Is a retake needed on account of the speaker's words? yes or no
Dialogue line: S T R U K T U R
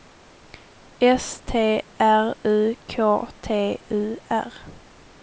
no